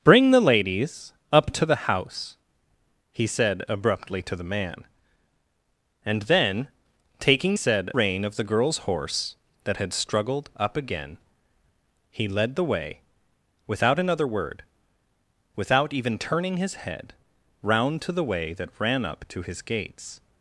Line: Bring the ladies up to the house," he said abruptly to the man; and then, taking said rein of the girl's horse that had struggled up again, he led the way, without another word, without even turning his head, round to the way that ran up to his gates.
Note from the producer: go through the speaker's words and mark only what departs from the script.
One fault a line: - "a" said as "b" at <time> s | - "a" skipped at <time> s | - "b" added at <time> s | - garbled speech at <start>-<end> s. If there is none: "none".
none